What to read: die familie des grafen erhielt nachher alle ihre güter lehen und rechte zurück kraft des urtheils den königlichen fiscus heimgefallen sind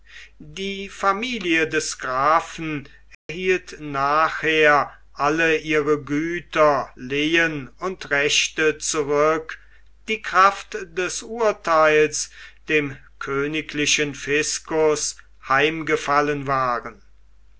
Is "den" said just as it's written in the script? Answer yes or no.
no